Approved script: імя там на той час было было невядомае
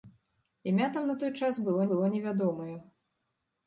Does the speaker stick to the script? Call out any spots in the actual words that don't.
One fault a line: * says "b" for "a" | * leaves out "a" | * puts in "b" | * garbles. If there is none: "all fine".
all fine